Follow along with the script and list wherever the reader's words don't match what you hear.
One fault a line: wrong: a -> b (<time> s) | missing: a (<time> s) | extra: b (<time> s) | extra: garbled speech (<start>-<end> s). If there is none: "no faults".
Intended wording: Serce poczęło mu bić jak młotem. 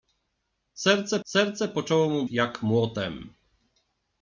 extra: serce (1.2 s)
missing: bić (2.2 s)